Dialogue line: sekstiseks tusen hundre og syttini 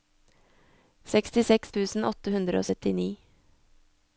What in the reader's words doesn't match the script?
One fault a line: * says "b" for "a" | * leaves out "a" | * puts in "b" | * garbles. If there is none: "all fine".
* puts in "åtte"